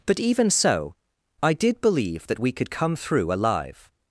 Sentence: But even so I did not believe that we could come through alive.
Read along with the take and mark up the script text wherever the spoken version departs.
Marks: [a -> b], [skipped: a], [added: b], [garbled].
But even so I did [skipped: not] believe that we could come through alive.